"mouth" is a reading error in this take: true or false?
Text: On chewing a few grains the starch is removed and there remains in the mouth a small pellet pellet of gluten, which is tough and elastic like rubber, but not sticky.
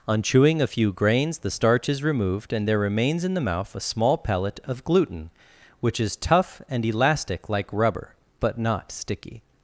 false